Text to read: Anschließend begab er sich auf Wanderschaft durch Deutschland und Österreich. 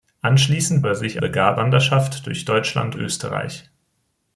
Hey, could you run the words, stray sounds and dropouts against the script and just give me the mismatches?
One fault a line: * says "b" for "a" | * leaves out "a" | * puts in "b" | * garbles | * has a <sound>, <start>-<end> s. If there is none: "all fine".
* leaves out "begab"
* says "begab" for "auf"
* leaves out "und"